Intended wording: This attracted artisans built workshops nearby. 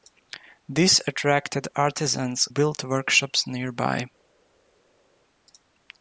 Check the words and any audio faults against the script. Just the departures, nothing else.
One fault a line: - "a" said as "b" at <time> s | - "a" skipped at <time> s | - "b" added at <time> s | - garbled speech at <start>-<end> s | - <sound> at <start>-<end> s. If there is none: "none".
none